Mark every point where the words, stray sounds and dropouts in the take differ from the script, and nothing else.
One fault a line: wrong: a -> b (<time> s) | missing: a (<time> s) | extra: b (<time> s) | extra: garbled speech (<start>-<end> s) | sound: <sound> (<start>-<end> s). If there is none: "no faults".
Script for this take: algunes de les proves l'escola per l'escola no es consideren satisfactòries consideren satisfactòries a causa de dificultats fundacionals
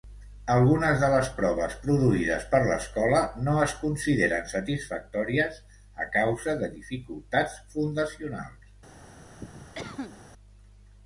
wrong: l'escola -> produïdes (1.8 s)
missing: consideren satisfactòries (5.6 s)
sound: cough (9.4-10.2 s)